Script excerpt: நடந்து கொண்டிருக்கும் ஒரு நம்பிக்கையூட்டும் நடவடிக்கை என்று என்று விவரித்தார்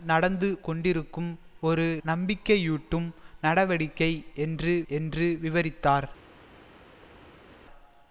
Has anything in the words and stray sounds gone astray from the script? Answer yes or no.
no